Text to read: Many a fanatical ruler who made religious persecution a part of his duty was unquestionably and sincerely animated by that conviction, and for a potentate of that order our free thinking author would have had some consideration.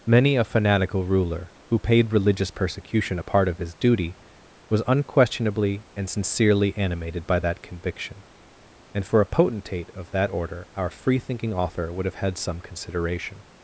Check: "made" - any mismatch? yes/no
yes